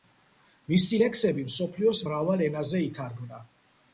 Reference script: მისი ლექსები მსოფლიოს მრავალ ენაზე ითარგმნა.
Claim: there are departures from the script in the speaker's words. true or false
false